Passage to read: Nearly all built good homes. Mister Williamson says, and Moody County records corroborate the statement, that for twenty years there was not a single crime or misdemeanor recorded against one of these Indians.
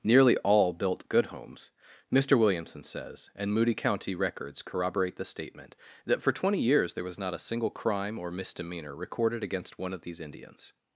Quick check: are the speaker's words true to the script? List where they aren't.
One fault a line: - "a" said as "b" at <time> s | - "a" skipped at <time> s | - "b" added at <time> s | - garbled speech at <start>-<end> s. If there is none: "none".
none